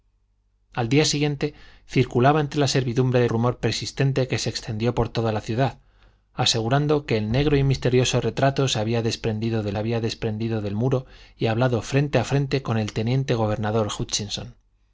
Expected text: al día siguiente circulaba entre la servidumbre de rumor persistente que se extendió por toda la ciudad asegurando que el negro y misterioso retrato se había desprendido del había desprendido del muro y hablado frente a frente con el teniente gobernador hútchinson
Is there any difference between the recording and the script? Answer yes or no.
no